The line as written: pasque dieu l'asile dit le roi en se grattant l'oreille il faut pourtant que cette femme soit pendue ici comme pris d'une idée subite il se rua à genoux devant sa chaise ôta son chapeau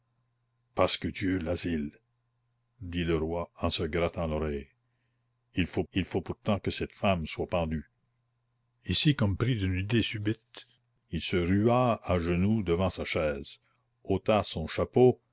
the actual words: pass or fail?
fail